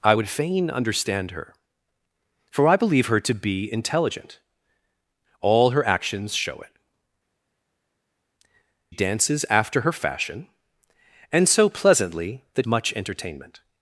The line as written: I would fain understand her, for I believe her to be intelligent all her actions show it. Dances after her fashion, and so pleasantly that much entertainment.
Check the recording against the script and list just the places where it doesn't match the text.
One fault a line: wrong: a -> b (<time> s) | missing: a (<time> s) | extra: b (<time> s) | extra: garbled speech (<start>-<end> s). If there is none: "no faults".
no faults